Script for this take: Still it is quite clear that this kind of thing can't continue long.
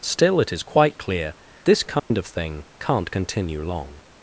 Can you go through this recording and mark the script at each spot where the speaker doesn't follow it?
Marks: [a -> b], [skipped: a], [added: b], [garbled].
Still it is quite clear [skipped: that] this kind of thing can't continue long.